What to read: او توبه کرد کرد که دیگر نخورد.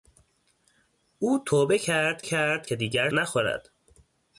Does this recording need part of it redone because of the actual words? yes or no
no